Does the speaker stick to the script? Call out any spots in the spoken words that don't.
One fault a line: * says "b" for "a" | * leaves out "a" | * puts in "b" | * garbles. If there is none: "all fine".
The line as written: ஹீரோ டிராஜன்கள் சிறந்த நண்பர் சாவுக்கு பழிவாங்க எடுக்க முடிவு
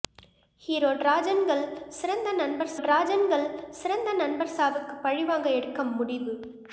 * puts in "டிராஜன்கள் சிறந்த நண்பர்"